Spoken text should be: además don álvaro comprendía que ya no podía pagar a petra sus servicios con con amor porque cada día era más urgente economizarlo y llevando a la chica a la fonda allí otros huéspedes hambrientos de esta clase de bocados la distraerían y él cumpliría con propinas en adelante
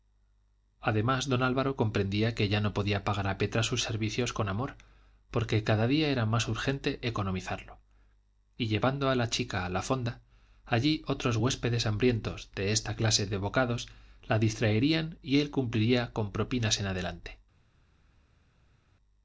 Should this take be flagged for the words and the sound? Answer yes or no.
yes